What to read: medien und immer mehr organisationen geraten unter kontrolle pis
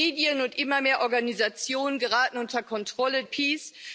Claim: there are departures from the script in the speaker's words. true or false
false